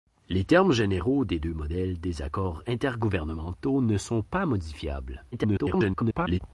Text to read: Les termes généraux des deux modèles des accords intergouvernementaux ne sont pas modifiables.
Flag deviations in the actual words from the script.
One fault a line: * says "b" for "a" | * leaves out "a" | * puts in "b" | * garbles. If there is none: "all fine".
* garbles